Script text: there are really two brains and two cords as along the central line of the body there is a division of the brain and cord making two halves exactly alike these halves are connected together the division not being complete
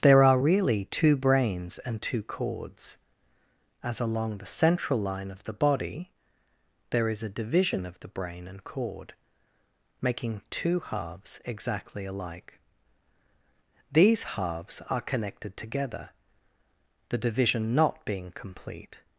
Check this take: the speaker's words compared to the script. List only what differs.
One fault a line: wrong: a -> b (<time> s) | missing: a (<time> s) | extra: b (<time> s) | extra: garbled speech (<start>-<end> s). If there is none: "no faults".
no faults